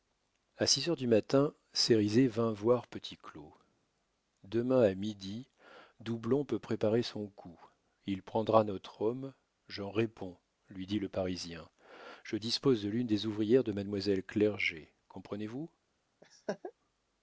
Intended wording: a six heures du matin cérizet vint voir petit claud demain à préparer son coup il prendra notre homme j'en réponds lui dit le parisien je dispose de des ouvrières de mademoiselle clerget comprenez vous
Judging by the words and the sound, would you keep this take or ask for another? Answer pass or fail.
fail